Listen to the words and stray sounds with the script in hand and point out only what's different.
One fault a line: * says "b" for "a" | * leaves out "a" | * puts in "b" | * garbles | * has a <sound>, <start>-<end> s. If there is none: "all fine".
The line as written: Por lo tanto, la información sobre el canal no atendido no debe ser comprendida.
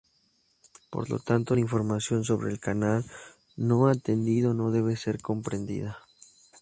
all fine